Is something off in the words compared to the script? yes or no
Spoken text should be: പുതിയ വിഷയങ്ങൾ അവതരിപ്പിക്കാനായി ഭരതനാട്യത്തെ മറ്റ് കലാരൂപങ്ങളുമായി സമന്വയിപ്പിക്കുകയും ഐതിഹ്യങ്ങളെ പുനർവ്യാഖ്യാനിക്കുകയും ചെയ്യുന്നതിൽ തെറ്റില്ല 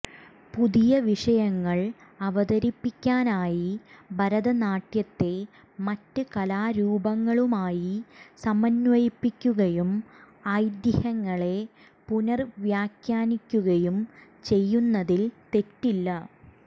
no